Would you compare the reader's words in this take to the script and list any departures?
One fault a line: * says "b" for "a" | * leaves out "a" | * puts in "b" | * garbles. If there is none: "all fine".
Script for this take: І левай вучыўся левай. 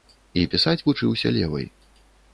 * says "пісаць" for "левай"